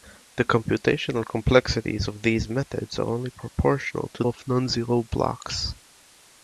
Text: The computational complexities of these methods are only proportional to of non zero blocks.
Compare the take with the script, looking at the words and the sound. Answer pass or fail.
pass